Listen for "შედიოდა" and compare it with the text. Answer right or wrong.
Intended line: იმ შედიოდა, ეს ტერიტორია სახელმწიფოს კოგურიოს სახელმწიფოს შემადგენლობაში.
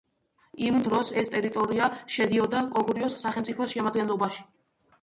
wrong